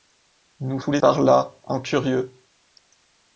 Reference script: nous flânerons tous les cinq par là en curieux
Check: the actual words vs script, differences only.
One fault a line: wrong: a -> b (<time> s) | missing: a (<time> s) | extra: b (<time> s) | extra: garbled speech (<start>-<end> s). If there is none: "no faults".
missing: flânerons (0.8 s)
missing: cinq (1.0 s)